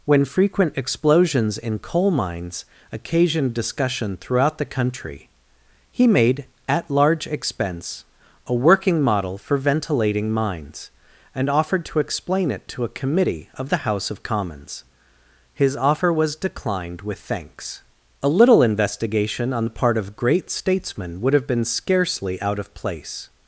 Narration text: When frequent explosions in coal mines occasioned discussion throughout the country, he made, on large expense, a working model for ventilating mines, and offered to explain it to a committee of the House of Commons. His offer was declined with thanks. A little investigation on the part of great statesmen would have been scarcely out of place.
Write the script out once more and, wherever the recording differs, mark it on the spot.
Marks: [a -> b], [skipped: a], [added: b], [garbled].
When frequent explosions in coal mines occasioned discussion throughout the country, he made, [on -> at] large expense, a working model for ventilating mines, and offered to explain it to a committee of the House of Commons. His offer was declined with thanks. A little investigation on the part of great statesmen would have been scarcely out of place.